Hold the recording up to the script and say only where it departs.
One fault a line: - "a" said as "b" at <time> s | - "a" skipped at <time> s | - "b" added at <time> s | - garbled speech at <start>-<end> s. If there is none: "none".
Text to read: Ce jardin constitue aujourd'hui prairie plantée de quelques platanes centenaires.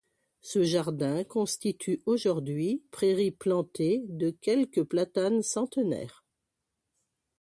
none